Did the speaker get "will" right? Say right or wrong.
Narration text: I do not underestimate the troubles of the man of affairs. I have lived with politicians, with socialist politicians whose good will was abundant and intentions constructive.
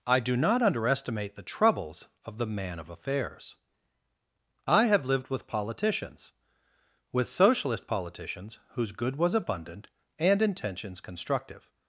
wrong